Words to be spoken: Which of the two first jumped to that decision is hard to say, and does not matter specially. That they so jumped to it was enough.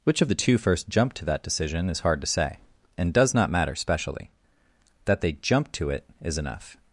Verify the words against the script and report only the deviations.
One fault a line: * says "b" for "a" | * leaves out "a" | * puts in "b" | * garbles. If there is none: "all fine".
* leaves out "so"
* says "is" for "was"